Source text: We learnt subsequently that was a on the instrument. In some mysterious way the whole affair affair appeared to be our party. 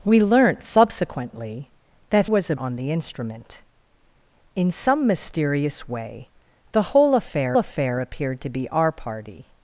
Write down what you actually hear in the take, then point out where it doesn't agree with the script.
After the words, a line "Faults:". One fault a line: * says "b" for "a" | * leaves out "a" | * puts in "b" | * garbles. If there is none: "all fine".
We learnt subsequently that was a on the instrument. In some mysterious way the whole affair affair appeared to be our party.
Faults:
all fine